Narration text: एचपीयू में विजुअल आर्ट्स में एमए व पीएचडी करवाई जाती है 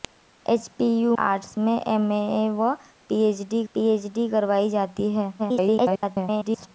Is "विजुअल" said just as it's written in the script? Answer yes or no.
no